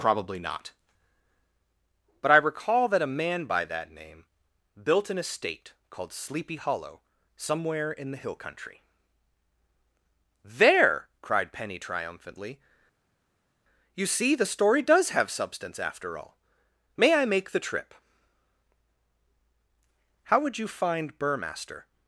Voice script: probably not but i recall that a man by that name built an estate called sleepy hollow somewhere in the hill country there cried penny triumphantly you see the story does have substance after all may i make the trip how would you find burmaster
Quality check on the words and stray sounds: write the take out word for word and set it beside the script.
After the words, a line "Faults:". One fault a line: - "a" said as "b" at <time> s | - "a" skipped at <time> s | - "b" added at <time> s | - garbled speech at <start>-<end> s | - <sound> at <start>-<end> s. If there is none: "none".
probably not but i recall that a man by that name built an estate called sleepy hollow somewhere in the hill country there cried penny triumphantly you see the story does have substance after all may i make the trip how would you find burmaster
Faults:
none